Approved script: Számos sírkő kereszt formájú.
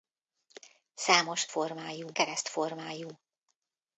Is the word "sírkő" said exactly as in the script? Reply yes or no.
no